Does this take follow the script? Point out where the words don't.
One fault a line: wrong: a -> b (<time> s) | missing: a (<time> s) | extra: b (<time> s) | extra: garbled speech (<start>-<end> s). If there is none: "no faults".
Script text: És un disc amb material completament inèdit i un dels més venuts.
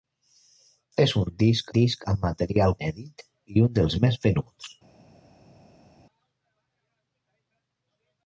extra: disc (1.8 s)
missing: completament (2.7 s)